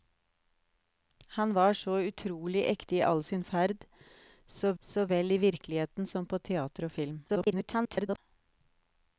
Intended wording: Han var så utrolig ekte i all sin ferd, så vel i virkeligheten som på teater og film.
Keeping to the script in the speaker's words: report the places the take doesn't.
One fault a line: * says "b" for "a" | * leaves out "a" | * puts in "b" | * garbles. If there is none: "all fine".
* puts in "så"
* garbles